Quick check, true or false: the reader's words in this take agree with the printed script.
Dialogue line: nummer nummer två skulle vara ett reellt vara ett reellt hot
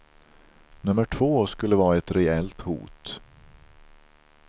false